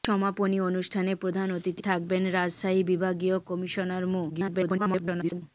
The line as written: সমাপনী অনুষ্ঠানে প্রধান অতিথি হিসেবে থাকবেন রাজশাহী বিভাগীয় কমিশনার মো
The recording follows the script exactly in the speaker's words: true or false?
false